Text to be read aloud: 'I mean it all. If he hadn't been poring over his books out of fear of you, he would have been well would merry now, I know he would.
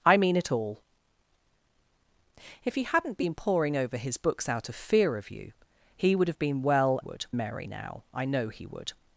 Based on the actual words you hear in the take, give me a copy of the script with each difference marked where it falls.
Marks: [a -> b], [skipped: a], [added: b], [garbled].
'I mean it all. If he hadn't been poring over his books out of fear of you, he would have been well would merry now, I know he would.